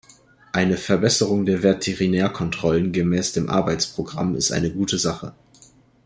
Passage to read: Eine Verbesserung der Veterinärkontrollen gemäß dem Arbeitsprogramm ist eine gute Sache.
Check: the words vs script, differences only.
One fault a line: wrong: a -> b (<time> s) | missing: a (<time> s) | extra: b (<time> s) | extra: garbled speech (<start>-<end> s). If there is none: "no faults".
no faults